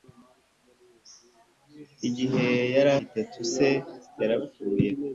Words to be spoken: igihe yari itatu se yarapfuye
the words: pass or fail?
pass